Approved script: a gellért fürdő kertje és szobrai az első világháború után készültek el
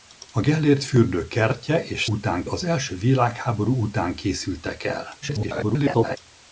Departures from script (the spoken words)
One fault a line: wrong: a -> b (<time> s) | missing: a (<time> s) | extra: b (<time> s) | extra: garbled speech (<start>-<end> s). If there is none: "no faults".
wrong: szobrai -> után (2.1 s)
extra: garbled speech (5.2-6.2 s)